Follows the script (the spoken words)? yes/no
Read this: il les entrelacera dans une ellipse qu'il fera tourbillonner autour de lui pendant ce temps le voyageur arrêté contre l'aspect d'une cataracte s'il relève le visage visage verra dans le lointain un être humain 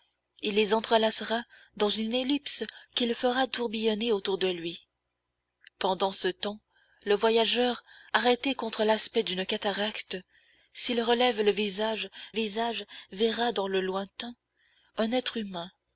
yes